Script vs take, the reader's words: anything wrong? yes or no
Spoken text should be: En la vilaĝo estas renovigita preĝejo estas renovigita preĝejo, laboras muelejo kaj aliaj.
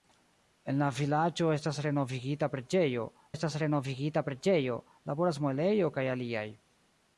no